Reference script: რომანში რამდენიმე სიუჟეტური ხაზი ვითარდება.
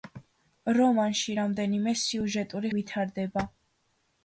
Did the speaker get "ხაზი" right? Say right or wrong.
wrong